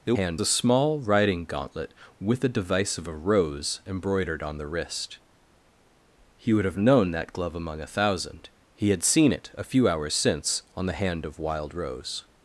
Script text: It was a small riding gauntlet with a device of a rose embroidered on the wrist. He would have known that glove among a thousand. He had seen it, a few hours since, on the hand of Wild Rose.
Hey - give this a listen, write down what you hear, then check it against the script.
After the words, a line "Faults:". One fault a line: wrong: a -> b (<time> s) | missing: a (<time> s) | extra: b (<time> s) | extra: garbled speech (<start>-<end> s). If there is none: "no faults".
It hand a small riding gauntlet with a device of a rose embroidered on the wrist. He would have known that glove among a thousand. He had seen it, a few hours since, on the hand of Wild Rose.
Faults:
wrong: was -> hand (0.2 s)